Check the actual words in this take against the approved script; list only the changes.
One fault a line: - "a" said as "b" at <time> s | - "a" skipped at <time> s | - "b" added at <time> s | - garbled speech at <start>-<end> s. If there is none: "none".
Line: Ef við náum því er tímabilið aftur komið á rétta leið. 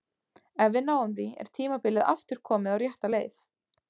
none